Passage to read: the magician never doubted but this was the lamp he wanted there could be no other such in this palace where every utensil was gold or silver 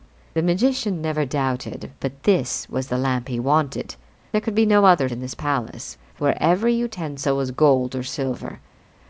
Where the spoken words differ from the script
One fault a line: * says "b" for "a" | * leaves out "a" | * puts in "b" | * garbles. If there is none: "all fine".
* leaves out "such"